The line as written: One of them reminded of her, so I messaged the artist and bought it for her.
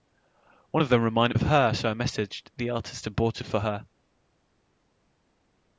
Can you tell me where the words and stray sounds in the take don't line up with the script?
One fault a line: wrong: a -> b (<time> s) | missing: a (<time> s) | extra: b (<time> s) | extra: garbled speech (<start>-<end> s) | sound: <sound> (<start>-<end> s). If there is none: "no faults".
no faults